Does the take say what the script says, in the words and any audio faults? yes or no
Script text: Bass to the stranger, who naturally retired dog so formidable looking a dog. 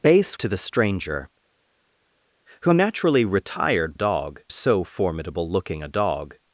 yes